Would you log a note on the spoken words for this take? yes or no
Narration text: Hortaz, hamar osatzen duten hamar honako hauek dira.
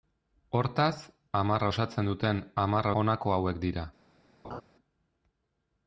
no